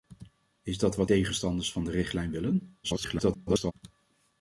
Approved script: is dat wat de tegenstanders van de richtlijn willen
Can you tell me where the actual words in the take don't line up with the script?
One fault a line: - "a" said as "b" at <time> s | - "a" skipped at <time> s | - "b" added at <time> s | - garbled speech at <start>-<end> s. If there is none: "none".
- "de" skipped at 1.1 s
- garbled speech at 2.8-3.7 s